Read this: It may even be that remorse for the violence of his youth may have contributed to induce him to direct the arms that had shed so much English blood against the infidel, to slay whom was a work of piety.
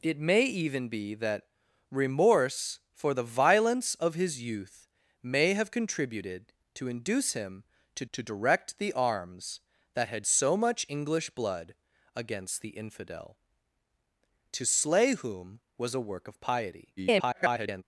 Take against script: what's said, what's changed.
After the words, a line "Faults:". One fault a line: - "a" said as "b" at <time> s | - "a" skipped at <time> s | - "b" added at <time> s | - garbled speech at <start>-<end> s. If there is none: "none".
It may even be that remorse for the violence of his youth may have contributed to induce him to to direct the arms that had so much English blood against the infidel, to slay whom was a work of piety. [garbled]
Faults:
- "to" added at 8.1 s
- "shed" skipped at 10.3 s
- garbled speech at 17.0-17.8 s